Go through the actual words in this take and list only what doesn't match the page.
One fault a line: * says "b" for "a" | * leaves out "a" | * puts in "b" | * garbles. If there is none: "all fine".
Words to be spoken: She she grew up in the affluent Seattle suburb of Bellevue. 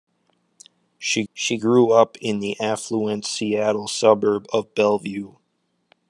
all fine